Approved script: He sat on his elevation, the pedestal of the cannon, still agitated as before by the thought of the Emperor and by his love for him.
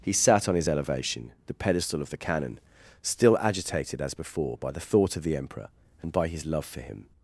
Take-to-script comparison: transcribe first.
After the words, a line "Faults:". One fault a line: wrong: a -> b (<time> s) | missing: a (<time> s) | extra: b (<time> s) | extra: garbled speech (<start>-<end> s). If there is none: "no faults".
He sat on his elevation, the pedestal of the cannon, still agitated as before by the thought of the Emperor and by his love for him.
Faults:
no faults